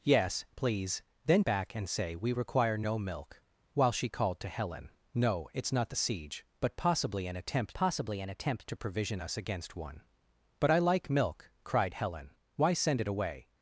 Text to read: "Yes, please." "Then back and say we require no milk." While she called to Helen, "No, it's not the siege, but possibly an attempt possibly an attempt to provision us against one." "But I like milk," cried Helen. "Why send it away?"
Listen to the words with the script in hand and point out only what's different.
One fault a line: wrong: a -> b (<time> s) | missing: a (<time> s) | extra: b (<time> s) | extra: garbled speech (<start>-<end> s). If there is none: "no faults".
no faults